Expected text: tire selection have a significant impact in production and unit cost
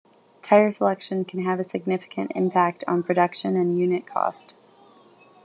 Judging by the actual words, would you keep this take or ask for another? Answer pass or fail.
fail